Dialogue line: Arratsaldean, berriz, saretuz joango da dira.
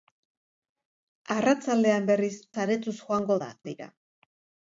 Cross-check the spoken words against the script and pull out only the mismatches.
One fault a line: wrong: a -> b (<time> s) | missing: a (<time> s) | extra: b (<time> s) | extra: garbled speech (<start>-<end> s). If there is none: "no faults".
no faults